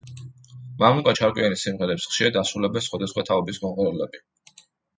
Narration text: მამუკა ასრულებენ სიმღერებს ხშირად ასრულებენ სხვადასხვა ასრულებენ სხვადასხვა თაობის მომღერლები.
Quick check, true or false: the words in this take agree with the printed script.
false